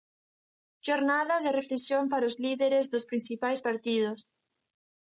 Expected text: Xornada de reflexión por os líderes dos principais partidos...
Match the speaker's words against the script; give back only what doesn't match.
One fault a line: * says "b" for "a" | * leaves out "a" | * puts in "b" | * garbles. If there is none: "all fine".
* says "para" for "por"